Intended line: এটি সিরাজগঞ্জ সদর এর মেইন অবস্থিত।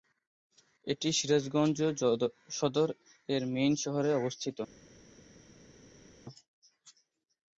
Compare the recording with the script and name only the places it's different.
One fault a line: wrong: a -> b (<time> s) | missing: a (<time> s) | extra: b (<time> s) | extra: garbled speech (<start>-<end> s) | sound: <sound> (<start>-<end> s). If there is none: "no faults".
extra: শহরে (3.8 s)